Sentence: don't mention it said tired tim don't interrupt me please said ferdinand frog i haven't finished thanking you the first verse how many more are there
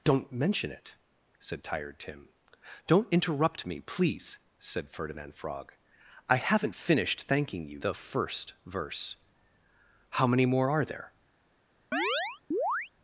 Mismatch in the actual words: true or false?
false